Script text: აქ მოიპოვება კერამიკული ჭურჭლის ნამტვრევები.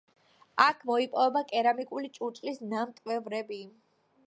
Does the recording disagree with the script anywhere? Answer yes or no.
no